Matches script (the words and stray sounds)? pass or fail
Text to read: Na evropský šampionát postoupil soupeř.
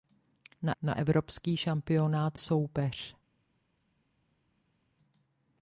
fail